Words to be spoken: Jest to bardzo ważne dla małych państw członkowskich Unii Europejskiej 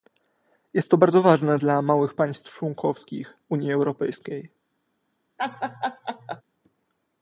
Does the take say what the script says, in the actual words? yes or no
yes